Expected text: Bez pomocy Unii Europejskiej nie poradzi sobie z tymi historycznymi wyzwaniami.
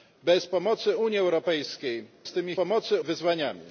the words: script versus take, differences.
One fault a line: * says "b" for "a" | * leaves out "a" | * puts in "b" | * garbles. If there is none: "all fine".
* leaves out "nie poradzi sobie"
* says "pomocy" for "historycznymi"